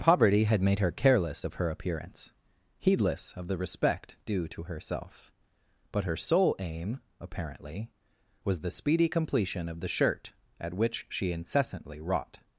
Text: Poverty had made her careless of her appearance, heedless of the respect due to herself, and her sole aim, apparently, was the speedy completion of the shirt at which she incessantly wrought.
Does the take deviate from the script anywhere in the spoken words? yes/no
yes